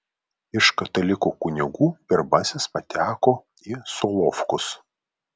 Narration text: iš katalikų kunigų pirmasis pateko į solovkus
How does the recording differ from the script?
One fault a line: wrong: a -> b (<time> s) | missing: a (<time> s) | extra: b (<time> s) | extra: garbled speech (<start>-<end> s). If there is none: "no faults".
no faults